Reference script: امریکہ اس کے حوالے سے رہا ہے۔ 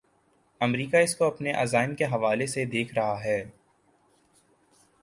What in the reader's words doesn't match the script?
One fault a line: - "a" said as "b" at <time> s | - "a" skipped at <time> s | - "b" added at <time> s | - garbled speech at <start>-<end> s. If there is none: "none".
- "کو اپنے عزائم" added at 1.1 s
- "دیکھ" added at 2.6 s